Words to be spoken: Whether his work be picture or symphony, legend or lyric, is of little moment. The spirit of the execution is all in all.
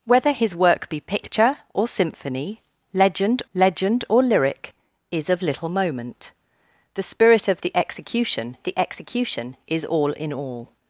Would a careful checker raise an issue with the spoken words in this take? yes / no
yes